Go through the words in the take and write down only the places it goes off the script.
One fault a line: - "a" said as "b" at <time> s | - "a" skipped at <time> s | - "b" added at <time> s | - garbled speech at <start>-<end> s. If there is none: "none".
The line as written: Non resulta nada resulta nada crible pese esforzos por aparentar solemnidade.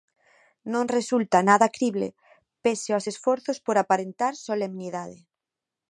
- "resulta nada" skipped at 1.7 s
- "aos" added at 2.9 s